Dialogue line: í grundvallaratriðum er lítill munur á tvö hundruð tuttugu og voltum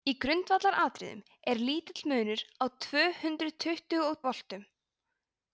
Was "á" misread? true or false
false